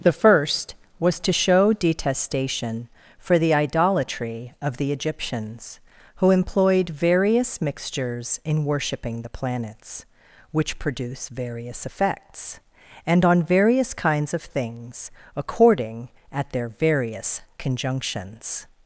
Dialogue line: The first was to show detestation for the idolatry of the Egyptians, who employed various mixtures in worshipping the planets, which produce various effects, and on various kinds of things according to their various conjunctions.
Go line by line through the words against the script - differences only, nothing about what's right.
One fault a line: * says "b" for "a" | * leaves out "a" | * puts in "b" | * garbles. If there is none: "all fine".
* says "at" for "to"